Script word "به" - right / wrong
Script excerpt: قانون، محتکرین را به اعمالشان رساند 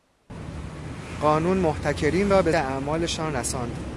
right